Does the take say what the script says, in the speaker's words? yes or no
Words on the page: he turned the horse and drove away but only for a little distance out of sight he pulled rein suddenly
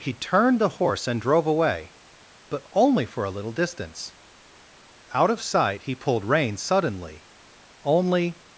no